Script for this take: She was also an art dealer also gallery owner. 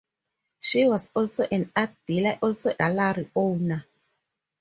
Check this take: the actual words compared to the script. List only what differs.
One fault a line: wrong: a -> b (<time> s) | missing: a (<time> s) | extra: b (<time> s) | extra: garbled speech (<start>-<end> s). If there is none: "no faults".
no faults